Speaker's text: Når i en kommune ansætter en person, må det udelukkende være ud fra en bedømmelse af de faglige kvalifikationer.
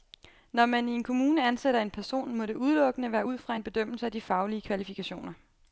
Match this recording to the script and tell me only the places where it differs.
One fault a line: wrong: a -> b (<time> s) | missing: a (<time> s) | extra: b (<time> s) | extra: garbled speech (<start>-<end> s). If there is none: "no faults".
extra: man (0.7 s)